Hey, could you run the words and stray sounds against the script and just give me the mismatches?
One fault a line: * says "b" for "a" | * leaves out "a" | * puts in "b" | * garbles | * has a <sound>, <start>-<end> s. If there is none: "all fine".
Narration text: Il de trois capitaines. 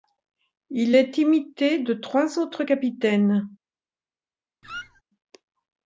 * puts in "est imité"
* puts in "autres"
* has a squeak, 4.6-5.0 s